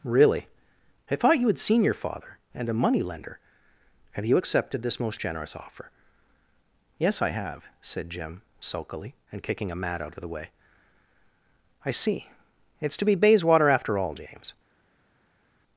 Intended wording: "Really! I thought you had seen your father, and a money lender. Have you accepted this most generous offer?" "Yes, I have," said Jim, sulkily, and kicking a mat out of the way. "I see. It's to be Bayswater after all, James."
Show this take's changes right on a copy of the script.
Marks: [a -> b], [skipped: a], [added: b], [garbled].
"Really! I thought you had seen your father, and a money lender. Have you accepted this most generous offer?" "Yes, I have," said Jim, sulkily, and kicking a mat out of the way. "I see. It's to be Bayswater after all, James."